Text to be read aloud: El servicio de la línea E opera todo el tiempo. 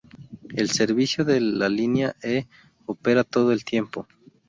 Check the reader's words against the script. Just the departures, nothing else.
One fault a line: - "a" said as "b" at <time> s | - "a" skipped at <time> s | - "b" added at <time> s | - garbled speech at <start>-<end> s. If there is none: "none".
none